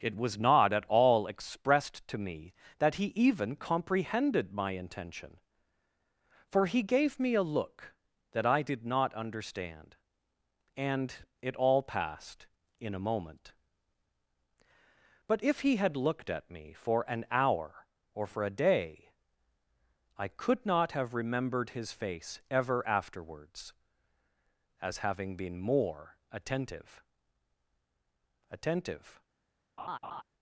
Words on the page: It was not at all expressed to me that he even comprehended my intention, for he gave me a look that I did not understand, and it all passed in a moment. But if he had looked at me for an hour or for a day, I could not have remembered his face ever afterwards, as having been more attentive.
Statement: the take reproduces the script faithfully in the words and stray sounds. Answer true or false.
false